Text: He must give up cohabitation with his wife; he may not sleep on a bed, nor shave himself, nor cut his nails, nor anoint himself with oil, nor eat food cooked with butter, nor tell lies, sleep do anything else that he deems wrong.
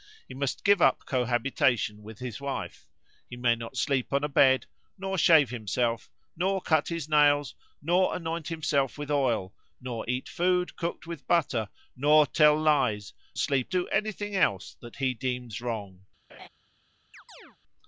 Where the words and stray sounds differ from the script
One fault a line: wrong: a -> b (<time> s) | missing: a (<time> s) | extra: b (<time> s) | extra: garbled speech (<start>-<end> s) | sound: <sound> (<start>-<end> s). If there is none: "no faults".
sound: laugh (16.3-16.5 s)
sound: chirp (17.1-17.6 s)